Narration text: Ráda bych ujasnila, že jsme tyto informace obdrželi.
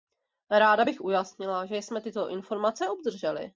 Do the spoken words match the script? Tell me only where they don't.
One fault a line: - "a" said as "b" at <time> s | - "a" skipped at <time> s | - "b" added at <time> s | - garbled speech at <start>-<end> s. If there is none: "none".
none